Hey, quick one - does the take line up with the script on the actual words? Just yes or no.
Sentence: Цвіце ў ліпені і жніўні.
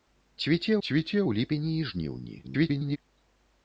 no